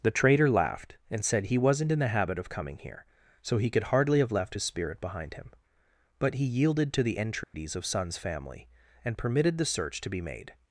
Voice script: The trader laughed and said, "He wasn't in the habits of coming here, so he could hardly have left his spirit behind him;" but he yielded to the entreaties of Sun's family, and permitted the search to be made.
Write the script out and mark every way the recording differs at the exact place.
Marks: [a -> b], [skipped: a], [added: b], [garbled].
The trader laughed and said, "He wasn't in the [habits -> habit] of coming here, so he could hardly have left his spirit behind him;" but he yielded to the entreaties of Sun's family, and permitted the search to be made.